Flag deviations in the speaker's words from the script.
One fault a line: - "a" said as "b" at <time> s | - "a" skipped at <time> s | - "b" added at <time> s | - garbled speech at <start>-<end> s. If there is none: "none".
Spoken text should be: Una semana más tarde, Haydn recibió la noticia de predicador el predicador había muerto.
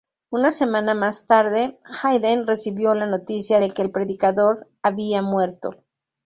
- "predicador" said as "que" at 3.7 s